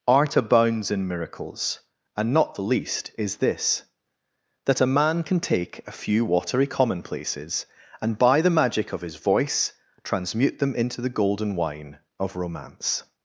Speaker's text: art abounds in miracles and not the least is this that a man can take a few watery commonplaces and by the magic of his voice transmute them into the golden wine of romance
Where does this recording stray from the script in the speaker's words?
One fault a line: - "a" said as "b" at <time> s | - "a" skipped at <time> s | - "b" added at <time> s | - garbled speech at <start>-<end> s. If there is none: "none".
none